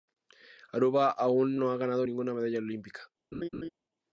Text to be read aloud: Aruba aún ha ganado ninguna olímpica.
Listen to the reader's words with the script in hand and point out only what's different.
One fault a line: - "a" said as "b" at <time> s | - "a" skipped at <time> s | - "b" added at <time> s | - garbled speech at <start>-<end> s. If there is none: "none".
- "no" added at 1.6 s
- "medalla" added at 2.3 s